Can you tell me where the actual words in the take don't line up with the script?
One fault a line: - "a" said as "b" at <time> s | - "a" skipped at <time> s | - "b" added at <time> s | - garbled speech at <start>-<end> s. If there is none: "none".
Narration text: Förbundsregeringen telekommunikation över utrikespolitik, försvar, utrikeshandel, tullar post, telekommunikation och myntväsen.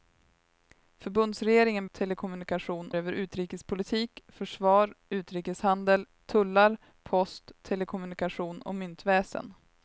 none